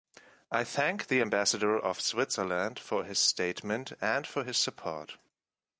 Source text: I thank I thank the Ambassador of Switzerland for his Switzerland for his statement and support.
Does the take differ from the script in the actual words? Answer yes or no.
yes